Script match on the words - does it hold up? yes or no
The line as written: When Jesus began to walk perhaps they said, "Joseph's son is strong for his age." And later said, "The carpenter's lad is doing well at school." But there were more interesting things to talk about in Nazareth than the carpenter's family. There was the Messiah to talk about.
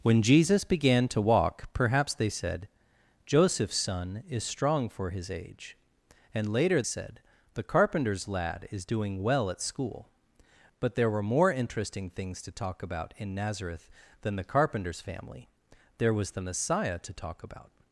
yes